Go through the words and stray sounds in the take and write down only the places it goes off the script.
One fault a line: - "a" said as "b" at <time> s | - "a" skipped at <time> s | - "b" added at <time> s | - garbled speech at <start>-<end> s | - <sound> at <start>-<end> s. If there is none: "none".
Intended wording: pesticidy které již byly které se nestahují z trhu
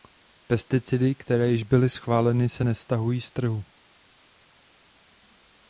- "které" said as "schváleny" at 1.9 s